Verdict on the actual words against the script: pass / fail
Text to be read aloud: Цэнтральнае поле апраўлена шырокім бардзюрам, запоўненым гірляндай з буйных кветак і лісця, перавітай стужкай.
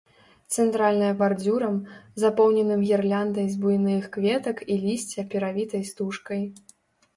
fail